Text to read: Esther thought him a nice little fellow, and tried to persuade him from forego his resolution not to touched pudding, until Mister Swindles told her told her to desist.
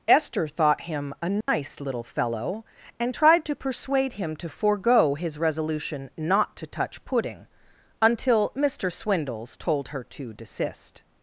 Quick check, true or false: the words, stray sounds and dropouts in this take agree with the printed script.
false